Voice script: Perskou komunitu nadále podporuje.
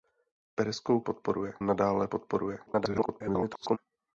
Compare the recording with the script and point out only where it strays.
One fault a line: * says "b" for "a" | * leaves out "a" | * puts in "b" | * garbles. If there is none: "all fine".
* says "podporuje" for "komunitu"
* garbles